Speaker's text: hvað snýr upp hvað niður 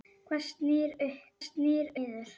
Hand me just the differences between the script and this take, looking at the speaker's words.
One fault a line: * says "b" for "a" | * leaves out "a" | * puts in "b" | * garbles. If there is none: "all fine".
* says "snýr" for "hvað"